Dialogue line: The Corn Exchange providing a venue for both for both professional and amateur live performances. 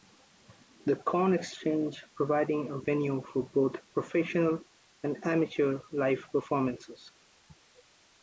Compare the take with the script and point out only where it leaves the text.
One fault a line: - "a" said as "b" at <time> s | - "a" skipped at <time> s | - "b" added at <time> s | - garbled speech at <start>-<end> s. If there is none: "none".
- "for both" skipped at 3.8 s